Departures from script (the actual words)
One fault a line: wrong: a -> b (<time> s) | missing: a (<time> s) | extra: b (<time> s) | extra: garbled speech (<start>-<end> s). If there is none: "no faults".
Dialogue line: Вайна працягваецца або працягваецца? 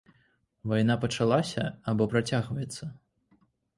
wrong: працягваецца -> пачалася (1.0 s)